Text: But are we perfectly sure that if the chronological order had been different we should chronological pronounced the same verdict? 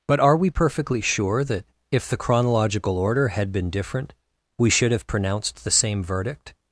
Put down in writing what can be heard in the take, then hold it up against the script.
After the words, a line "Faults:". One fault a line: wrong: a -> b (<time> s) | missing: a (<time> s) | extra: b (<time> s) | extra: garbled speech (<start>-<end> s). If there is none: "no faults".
But are we perfectly sure that if the chronological order had been different we should have pronounced the same verdict?
Faults:
wrong: chronological -> have (4.9 s)